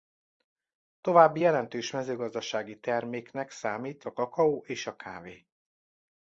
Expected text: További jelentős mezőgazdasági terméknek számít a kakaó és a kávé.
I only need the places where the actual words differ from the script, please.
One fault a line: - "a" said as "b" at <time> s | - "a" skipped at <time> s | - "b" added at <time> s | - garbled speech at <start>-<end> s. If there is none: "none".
none